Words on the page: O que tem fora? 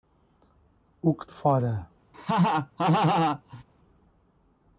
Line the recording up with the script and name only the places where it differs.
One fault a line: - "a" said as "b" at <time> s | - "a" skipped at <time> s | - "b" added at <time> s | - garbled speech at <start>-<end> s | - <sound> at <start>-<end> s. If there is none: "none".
- "tem" skipped at 1.3 s
- laugh at 2.1-3.6 s